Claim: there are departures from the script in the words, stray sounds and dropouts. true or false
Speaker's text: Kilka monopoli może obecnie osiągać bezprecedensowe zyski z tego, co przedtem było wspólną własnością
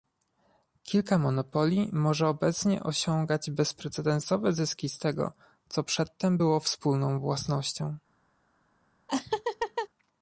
true